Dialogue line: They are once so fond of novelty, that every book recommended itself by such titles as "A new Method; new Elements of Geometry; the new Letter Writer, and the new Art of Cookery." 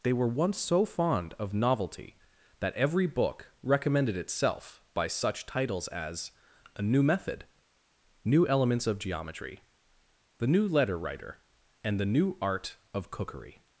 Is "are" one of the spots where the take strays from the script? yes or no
yes